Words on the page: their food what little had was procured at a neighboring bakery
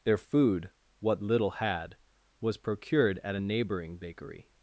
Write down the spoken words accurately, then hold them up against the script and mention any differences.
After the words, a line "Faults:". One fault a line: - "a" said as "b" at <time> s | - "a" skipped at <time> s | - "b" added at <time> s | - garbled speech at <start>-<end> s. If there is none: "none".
their food what little had was procured at a neighboring bakery
Faults:
none